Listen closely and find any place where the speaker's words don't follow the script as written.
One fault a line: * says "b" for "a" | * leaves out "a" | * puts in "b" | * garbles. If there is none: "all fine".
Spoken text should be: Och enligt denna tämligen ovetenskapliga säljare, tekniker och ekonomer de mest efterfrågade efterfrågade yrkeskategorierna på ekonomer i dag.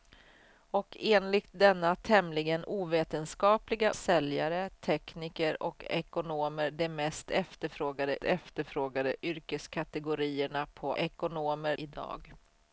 all fine